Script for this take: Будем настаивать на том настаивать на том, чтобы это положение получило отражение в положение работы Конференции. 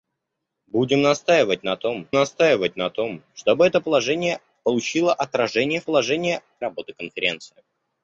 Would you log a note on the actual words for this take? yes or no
no